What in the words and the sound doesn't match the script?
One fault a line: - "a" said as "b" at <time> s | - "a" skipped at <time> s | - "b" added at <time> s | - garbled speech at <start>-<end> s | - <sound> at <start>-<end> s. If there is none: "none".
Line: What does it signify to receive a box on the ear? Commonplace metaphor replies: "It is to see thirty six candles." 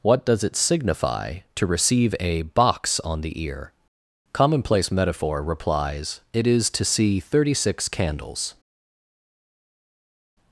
none